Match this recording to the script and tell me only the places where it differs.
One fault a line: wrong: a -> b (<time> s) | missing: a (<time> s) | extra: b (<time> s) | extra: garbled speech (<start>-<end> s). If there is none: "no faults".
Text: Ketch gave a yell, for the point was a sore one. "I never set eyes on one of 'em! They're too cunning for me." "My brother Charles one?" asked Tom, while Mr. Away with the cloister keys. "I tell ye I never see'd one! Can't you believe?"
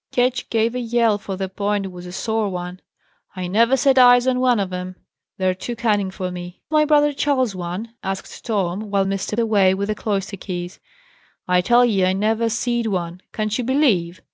no faults